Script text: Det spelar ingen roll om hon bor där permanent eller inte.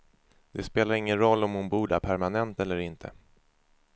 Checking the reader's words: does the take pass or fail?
pass